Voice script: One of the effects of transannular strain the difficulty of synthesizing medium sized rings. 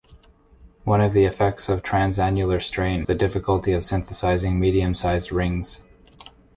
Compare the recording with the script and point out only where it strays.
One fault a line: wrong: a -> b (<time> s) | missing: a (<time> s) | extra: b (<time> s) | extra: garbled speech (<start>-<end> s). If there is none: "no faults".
no faults